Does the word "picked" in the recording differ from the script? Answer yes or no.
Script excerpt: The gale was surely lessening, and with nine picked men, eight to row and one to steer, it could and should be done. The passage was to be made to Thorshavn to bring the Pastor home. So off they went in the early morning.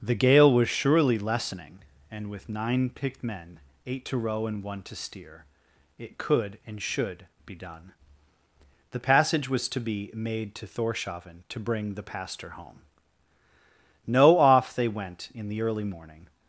no